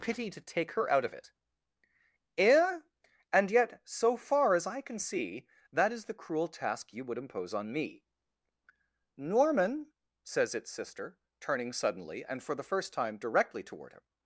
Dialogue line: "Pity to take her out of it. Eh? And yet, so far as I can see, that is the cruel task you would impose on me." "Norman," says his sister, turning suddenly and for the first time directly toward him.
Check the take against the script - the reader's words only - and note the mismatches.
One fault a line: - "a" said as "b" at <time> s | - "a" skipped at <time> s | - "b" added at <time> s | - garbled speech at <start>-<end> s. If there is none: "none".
- "his" said as "its" at 10.5 s